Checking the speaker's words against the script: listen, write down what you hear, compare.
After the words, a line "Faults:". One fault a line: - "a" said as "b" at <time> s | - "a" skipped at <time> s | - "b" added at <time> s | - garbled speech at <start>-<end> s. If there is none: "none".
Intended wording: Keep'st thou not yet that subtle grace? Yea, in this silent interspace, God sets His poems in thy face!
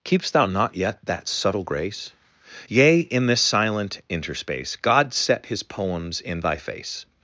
Keep'st thou not yet that subtle grace? Yea, in this silent interspace, God set His poems in thy face!
Faults:
- "sets" said as "set" at 5.1 s